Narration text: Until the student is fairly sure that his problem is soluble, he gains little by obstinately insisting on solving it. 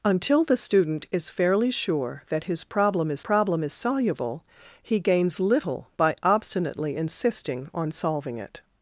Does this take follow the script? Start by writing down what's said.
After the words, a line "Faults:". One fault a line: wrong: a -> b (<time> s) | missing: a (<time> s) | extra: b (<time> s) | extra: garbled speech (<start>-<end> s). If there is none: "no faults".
Until the student is fairly sure that his problem is problem is soluble, he gains little by obstinately insisting on solving it.
Faults:
extra: problem is (3.2 s)